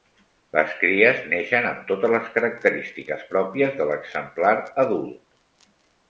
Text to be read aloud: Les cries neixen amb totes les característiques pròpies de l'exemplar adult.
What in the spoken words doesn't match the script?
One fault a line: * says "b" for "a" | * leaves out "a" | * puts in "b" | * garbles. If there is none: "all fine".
all fine